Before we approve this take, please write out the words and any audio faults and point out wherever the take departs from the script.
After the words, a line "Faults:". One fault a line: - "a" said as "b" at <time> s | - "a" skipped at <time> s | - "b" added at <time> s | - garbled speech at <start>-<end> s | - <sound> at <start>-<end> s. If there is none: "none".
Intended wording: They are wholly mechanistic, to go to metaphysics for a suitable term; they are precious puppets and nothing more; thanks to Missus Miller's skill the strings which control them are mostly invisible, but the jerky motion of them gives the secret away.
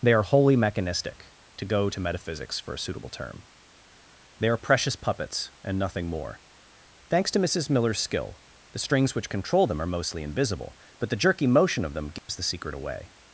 They are wholly mechanistic, to go to metaphysics for a suitable term; they are precious puppets and nothing more; thanks to Missus Miller's skill the strings which control them are mostly invisible, but the jerky motion of them gives the secret away.
Faults:
- dropout at 12.2-12.3 s